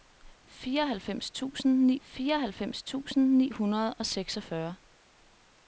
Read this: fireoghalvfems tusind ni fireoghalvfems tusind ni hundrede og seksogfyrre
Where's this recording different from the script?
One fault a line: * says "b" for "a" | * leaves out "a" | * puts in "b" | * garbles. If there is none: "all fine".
all fine